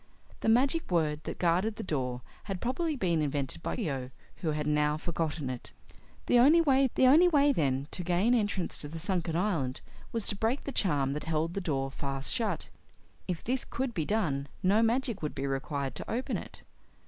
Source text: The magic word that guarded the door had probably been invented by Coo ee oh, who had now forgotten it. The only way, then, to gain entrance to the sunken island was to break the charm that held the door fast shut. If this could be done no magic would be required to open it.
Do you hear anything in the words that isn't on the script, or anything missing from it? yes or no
yes